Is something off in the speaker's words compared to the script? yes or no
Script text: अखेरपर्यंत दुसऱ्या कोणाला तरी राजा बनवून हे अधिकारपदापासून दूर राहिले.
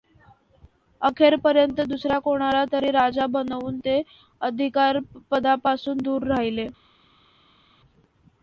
yes